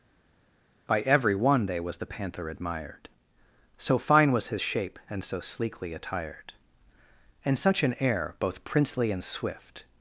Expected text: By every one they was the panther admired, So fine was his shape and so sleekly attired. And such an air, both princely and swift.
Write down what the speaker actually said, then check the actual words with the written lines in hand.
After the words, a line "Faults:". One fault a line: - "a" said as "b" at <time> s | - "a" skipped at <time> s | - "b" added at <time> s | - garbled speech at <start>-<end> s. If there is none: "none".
By every one they was the panther admired, So fine was his shape and so sleekly attired. And such an air, both princely and swift.
Faults:
none